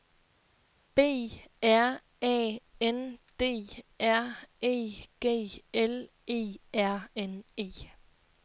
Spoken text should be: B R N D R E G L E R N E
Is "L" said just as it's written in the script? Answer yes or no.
yes